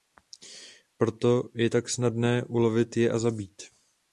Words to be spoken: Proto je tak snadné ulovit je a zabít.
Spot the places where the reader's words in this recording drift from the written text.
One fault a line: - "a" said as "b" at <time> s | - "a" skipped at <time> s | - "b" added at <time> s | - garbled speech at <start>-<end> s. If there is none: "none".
none